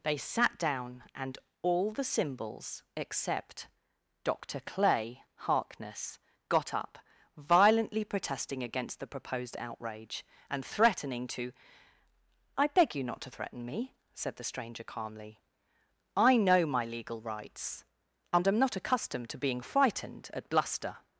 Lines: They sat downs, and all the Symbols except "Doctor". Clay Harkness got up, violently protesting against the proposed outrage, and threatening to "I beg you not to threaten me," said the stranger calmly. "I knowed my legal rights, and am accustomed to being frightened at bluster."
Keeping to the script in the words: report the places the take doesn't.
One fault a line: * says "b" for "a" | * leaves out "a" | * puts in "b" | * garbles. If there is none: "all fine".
* says "down" for "downs"
* says "know" for "knowed"
* puts in "not"